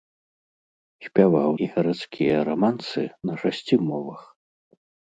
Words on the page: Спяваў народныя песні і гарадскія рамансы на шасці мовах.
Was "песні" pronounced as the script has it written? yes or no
no